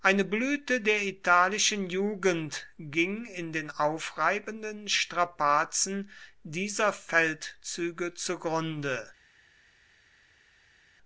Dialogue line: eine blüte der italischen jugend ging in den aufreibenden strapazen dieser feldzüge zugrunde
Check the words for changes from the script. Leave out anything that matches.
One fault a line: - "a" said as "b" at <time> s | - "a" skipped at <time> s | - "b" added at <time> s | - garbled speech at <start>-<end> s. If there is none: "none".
none